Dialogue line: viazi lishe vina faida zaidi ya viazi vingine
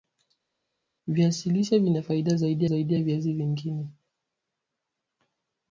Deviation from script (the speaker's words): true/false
true